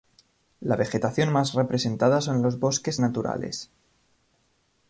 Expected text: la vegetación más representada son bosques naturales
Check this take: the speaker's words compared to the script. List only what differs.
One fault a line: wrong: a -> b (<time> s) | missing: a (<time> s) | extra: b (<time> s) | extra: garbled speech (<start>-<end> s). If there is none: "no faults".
extra: los (2.4 s)